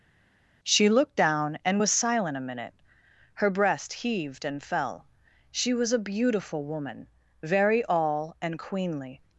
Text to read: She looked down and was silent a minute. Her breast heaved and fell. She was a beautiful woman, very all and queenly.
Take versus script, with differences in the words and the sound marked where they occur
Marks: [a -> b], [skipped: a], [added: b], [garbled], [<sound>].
She looked down and was silent a minute. Her breast heaved and fell. She was a beautiful woman, very all and queenly.